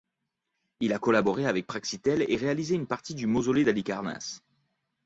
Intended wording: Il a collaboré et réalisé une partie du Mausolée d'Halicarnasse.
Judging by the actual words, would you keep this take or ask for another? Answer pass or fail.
fail